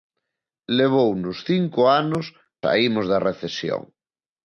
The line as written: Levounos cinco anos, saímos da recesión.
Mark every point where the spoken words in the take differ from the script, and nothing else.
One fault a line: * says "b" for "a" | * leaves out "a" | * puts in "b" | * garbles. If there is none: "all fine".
all fine